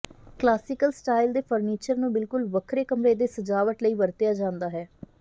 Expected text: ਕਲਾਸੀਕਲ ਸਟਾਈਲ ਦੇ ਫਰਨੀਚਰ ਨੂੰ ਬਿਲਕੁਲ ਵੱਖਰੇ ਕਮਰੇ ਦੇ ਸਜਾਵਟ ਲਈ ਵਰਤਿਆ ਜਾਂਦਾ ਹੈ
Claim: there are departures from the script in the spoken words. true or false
false